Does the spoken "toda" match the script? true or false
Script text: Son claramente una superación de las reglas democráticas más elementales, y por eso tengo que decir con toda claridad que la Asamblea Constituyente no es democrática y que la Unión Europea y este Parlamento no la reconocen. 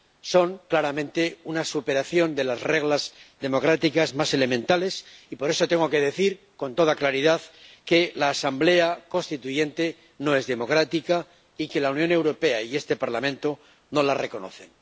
true